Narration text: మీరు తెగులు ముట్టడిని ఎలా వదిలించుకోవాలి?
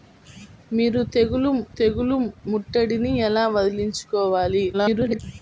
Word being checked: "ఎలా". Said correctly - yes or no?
yes